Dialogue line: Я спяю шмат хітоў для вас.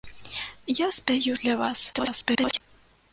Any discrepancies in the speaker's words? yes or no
yes